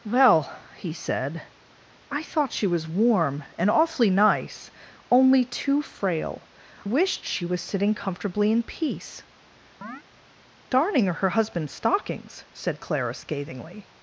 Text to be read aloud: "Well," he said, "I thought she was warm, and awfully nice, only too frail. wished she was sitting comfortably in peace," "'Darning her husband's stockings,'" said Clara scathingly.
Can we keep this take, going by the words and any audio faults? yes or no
no